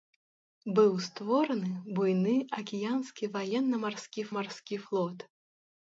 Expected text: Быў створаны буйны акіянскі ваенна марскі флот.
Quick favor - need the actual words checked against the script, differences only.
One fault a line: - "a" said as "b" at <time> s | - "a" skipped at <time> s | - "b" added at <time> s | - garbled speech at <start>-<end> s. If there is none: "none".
- "марскі" added at 4.4 s